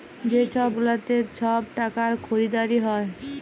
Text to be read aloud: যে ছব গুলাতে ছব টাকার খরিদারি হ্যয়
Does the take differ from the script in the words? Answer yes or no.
no